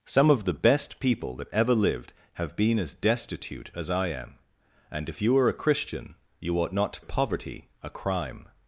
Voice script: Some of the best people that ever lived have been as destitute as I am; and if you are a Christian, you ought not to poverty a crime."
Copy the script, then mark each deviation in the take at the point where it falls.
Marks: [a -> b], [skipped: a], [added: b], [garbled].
Some of the best people that ever lived have been as destitute as I am; and if you are a Christian, you ought not to poverty a crime."